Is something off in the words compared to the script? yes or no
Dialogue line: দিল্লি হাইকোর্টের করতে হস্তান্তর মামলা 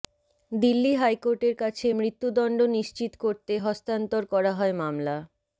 yes